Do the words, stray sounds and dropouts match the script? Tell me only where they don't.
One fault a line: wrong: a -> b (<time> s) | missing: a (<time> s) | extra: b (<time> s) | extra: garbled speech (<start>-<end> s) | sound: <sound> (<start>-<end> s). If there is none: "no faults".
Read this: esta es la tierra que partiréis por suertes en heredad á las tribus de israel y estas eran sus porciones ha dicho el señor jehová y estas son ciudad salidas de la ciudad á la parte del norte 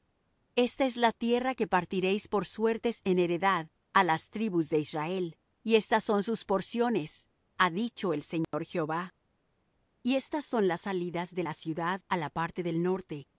wrong: eran -> son (6.0 s)
sound: dropout (8.4-8.5 s)
wrong: ciudad -> las (10.7 s)